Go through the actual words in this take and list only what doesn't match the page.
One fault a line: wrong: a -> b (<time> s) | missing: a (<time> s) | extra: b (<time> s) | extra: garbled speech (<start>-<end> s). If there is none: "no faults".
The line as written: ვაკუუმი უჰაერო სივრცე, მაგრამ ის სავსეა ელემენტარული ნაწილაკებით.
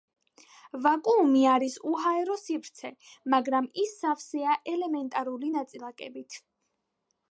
extra: არის (1.6 s)